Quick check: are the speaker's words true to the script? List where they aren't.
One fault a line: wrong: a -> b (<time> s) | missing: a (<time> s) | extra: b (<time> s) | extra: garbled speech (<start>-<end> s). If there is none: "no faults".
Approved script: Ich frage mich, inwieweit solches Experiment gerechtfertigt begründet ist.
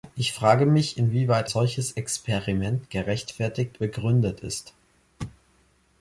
no faults